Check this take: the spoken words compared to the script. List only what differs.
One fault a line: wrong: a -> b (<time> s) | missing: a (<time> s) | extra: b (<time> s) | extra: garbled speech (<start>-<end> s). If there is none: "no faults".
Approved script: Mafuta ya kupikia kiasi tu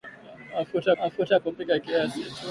extra: mafuta (1.0 s)